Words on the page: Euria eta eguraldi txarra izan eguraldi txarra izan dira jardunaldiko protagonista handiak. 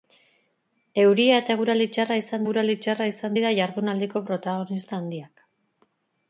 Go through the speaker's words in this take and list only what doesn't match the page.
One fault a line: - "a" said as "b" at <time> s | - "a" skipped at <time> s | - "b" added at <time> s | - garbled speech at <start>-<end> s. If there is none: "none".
none